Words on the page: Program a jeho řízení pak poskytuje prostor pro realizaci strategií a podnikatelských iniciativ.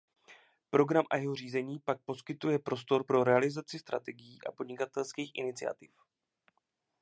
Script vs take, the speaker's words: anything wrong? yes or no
no